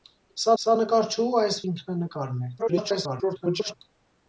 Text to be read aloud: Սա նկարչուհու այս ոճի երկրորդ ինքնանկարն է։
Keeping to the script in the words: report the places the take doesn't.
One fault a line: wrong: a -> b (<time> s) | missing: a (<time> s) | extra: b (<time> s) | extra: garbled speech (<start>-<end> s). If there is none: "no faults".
extra: սա (0.6 s)
missing: ոճի երկրորդ (1.6 s)
extra: garbled speech (2.6-3.7 s)